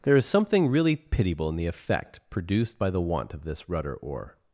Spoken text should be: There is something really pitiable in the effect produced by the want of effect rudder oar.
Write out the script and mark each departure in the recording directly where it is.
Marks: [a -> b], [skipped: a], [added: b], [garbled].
There is something really pitiable in the effect produced by the want of [effect -> this] rudder oar.